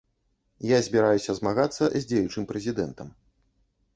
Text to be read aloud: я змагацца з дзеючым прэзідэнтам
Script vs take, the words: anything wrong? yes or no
yes